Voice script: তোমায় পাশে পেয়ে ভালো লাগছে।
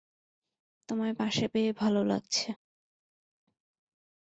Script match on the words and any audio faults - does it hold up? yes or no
yes